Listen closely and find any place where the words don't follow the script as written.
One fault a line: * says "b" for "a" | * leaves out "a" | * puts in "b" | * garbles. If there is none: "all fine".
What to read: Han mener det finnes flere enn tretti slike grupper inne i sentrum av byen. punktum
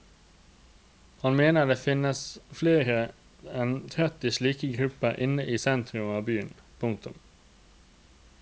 all fine